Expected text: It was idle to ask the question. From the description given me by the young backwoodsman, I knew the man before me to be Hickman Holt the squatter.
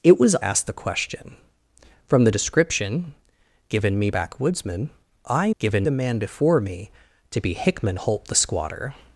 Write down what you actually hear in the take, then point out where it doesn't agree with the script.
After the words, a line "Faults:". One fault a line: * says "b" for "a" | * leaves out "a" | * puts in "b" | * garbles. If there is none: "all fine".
It was ask the question. From the description given me backwoodsman, I given the man before me to be Hickman Holt the squatter.
Faults:
* leaves out "idle to"
* leaves out "by the young"
* says "given" for "knew"